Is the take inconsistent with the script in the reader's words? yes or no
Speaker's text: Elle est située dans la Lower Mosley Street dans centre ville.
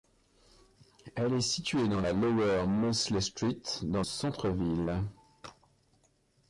no